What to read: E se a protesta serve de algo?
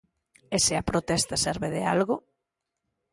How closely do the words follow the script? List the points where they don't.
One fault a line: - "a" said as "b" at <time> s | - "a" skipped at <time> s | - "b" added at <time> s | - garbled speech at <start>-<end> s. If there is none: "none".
none